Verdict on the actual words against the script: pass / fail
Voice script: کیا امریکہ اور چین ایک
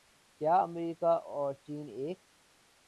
pass